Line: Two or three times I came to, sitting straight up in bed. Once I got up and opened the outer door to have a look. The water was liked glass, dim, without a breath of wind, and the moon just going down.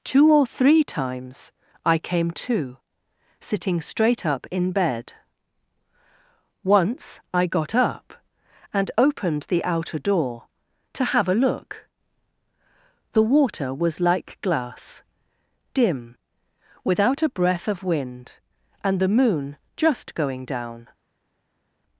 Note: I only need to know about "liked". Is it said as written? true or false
false